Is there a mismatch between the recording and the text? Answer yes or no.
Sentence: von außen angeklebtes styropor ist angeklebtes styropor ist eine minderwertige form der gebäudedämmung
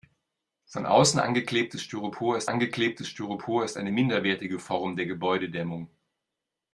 no